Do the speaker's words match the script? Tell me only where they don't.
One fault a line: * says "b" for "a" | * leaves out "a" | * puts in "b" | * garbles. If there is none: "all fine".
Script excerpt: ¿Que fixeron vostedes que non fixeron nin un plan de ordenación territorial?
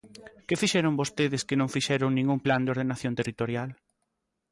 all fine